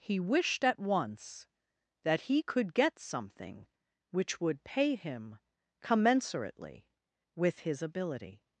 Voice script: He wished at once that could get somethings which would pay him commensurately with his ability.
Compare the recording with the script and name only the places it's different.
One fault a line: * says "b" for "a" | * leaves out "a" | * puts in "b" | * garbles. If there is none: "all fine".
* puts in "he"
* says "something" for "somethings"